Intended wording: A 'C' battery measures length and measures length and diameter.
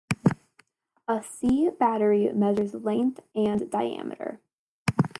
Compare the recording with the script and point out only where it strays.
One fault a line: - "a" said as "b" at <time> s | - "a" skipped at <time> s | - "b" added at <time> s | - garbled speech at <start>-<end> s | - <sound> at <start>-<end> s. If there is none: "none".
- "measures length and" skipped at 3.7 s